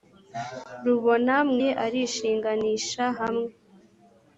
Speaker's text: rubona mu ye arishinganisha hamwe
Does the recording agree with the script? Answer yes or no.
yes